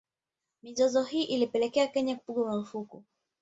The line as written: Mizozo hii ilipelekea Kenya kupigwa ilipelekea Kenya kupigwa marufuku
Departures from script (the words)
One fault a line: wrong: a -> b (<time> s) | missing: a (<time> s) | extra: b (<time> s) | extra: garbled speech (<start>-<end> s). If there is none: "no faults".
missing: ilipelekea Kenya kupigwa (2.4 s)